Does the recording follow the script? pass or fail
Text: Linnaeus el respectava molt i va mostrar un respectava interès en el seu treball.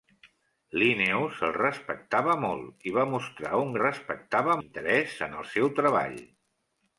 pass